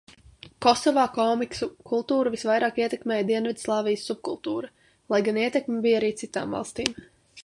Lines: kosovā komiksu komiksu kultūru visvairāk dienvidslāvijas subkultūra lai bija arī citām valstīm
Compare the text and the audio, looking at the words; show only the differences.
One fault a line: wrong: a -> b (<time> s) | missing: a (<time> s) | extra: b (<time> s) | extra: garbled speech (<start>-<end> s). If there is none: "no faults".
missing: komiksu (1.7 s)
extra: ietekmēja (2.8 s)
extra: gan ietekme (5.3 s)